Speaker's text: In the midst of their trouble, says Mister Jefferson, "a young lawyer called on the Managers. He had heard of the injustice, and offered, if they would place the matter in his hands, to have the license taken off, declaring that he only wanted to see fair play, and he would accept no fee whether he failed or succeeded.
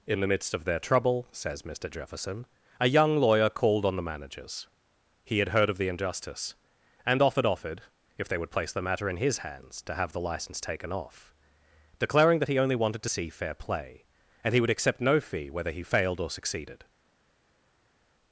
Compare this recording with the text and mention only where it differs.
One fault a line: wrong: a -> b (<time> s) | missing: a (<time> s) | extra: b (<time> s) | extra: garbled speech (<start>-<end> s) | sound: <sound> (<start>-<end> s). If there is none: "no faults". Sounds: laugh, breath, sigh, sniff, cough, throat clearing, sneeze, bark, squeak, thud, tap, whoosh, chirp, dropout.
extra: offered (7.5 s)